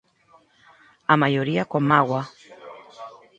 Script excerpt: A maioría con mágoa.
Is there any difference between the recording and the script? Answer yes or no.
no